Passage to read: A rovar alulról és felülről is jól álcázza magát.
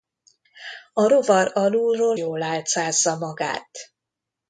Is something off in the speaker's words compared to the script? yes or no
yes